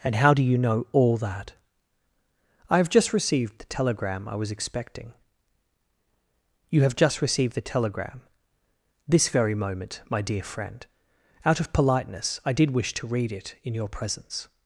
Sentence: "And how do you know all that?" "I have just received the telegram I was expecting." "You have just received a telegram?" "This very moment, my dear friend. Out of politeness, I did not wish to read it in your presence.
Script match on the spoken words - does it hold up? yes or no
no